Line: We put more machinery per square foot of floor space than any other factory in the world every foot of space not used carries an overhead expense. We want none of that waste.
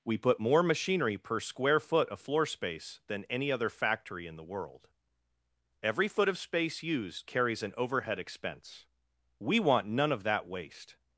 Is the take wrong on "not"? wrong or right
wrong